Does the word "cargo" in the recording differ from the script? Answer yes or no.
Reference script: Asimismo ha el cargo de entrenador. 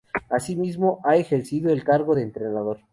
no